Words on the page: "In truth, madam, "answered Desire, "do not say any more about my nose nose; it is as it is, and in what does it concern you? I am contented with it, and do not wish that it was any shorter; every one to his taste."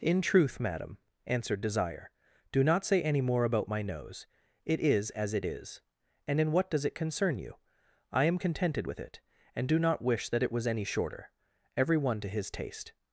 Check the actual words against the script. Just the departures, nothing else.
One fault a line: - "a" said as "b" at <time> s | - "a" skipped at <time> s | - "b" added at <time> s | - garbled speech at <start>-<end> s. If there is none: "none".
- "nose" skipped at 4.2 s